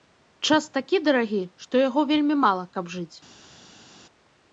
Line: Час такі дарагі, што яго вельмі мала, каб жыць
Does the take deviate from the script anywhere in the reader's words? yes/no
no